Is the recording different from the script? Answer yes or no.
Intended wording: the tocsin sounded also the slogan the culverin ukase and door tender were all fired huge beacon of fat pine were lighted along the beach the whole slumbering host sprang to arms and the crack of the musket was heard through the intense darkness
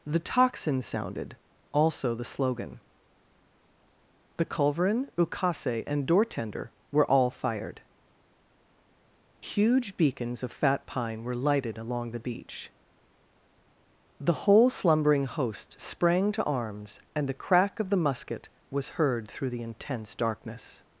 yes